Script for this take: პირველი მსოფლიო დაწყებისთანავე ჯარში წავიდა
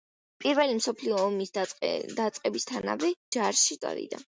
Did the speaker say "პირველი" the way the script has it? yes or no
yes